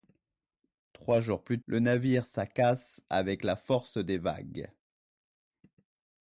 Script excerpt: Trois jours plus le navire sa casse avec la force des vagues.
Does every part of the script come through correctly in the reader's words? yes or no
yes